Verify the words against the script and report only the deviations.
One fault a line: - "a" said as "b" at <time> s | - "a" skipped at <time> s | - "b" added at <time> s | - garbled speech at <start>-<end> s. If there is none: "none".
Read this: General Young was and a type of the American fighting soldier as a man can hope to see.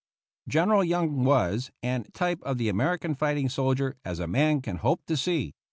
none